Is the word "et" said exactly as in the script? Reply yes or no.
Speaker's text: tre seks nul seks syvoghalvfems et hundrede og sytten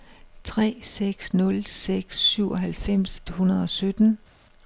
no